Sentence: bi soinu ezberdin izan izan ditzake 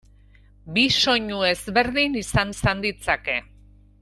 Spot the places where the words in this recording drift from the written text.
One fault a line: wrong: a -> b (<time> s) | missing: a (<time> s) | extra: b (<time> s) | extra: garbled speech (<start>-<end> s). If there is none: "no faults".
no faults